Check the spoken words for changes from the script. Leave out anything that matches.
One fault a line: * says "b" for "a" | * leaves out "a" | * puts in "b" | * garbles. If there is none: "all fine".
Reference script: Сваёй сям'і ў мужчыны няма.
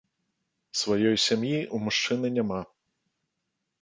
all fine